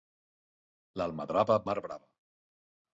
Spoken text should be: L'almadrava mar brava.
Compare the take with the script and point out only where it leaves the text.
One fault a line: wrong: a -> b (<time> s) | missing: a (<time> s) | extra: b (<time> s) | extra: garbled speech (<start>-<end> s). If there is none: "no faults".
no faults